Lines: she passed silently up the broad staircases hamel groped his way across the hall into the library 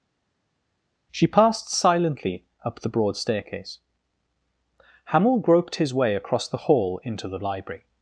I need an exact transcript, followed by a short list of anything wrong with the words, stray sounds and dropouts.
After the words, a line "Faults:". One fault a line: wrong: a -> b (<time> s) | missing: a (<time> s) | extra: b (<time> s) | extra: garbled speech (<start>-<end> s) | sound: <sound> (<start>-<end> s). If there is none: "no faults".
she passed silently up the broad staircase hamel groped his way across the hall into the library
Faults:
wrong: staircases -> staircase (3.2 s)